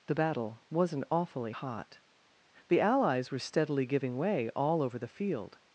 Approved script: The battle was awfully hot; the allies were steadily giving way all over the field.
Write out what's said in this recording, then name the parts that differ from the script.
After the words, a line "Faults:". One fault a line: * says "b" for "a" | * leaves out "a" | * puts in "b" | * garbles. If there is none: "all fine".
The battle wasn't awfully hot; the allies were steadily giving way all over the field.
Faults:
* says "wasn't" for "was"